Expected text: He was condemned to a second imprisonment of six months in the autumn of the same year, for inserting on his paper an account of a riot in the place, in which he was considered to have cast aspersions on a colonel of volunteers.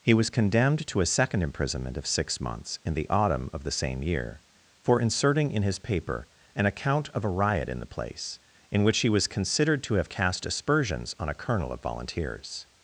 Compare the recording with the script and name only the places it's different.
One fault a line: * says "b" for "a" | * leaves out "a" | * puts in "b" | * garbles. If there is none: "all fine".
* says "in" for "on"